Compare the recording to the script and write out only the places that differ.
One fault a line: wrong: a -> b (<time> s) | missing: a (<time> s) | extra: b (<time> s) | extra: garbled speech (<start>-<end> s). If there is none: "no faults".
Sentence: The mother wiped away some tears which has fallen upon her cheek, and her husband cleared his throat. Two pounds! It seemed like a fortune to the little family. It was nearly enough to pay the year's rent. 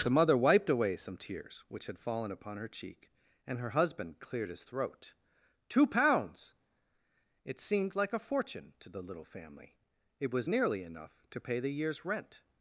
wrong: has -> had (1.9 s)